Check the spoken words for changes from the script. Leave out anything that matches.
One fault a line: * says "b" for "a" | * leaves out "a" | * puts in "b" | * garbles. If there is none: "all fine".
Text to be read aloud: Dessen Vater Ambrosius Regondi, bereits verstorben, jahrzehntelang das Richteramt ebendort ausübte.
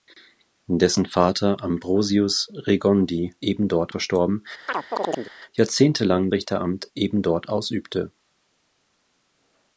* says "ebendort" for "bereits"
* leaves out "das"